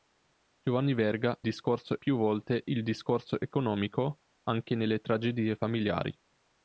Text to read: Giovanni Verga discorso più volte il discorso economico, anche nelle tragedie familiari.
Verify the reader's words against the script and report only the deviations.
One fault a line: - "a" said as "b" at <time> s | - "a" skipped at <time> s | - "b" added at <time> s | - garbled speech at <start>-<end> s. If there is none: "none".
none